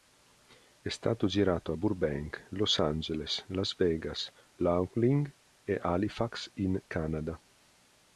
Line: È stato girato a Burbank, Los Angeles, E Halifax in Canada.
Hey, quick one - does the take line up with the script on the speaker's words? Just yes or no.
no